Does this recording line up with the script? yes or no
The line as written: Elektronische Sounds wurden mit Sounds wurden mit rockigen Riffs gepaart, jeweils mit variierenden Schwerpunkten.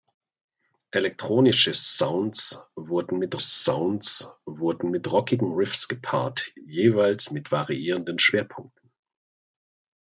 yes